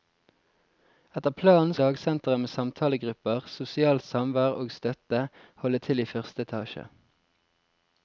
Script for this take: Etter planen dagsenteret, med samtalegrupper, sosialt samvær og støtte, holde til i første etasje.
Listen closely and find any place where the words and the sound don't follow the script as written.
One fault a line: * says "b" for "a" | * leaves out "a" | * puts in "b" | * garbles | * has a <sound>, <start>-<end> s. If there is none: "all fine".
all fine